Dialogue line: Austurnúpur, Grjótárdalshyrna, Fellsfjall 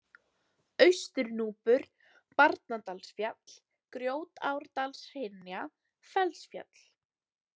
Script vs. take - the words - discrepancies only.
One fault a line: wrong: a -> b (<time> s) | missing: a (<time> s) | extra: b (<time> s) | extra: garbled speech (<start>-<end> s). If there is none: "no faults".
extra: Barnadalsfjall (2.4 s)